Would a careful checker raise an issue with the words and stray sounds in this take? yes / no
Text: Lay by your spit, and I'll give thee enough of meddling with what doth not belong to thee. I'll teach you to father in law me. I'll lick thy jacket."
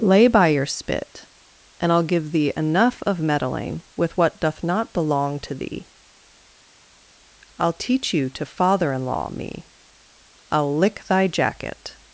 no